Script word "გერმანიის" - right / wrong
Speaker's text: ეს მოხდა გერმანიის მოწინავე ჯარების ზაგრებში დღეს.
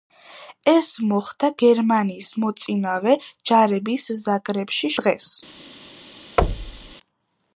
right